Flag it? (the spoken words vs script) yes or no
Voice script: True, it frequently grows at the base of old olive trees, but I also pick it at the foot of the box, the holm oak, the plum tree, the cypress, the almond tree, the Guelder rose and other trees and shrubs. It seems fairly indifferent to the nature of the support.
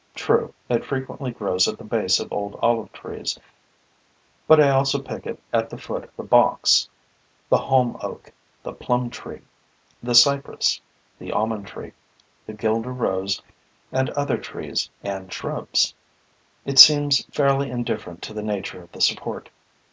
yes